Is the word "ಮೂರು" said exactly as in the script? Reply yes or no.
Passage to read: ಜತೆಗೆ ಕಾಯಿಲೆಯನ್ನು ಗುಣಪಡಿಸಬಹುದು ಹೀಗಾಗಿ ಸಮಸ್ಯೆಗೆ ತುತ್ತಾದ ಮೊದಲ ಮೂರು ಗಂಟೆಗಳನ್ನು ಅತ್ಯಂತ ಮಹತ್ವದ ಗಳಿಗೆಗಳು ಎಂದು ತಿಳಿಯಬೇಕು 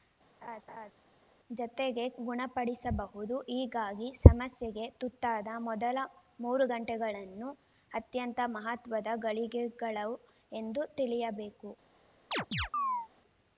yes